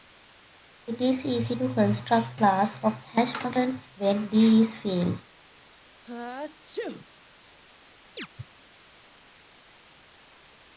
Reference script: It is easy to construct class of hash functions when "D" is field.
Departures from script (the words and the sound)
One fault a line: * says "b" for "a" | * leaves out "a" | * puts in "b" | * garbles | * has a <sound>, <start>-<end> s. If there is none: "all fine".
* has a sneeze, 6.0-7.1 s
* has a chirp, 8.2-8.3 s